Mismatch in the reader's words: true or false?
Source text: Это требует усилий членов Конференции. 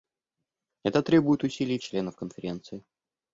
false